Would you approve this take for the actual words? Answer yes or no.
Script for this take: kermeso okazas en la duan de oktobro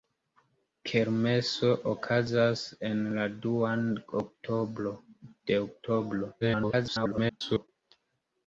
no